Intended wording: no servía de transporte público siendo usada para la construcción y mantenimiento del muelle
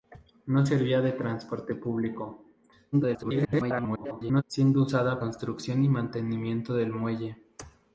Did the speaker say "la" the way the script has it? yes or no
no